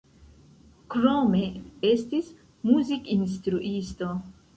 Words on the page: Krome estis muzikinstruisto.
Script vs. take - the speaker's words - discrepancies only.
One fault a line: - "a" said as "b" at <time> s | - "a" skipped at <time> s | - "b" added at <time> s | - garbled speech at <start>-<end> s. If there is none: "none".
none